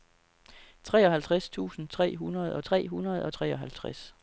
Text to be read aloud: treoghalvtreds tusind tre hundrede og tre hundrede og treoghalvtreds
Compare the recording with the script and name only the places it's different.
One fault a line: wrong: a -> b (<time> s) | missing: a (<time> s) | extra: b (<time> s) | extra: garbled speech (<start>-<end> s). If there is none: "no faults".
no faults